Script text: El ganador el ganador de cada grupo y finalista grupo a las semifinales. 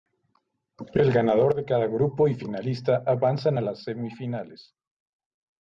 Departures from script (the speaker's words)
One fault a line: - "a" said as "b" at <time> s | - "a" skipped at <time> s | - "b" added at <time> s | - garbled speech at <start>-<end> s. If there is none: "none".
- "el ganador" skipped at 1.5 s
- "grupo" said as "avanzan" at 3.0 s